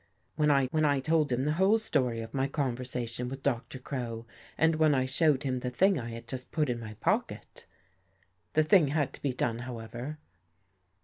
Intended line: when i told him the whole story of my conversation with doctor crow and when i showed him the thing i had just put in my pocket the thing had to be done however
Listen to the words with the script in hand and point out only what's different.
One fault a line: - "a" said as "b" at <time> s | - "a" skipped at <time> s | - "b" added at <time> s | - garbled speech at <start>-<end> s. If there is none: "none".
- "when i" added at 0.7 s